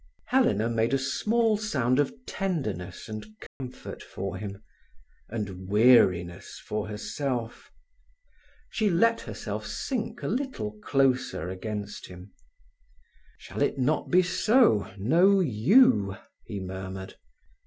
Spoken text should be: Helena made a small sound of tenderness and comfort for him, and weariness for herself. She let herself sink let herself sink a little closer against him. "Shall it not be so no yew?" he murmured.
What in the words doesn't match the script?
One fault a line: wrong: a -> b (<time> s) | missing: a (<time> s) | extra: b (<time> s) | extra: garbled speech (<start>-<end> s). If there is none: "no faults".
missing: let herself sink (10.2 s)